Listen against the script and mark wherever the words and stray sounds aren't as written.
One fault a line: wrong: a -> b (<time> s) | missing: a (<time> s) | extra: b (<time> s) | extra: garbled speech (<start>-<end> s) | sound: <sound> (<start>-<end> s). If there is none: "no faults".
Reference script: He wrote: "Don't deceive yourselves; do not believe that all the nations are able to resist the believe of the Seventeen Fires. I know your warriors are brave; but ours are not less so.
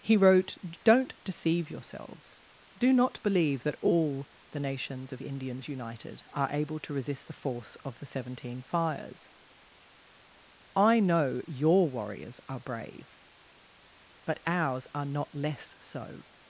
extra: of Indians united (5.1 s)
wrong: believe -> force (7.3 s)